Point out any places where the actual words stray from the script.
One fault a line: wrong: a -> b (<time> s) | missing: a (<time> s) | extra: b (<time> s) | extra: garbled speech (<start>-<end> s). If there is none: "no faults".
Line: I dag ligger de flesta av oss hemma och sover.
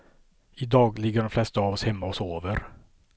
no faults